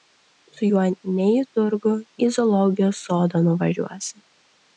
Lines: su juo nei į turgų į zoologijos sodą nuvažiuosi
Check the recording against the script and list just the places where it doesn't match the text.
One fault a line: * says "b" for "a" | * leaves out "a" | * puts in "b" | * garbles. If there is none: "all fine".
all fine